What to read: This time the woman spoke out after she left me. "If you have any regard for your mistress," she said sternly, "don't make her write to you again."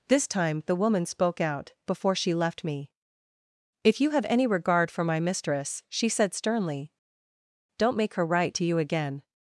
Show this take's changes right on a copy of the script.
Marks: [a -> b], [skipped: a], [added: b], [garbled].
This time the woman spoke out [after -> before] she left me. "If you have any regard for [your -> my] mistress," she said sternly, "don't make her write to you again."